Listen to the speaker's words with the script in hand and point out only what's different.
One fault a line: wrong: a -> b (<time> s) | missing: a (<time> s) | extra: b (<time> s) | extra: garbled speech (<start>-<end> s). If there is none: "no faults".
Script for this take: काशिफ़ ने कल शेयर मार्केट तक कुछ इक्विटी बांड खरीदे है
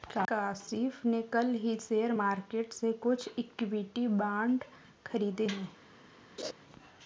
extra: ही (1.6 s)
wrong: तक -> से (2.7 s)